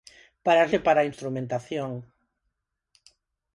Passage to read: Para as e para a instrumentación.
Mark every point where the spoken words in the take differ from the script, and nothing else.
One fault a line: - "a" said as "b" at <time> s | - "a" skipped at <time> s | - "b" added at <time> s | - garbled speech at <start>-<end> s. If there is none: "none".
none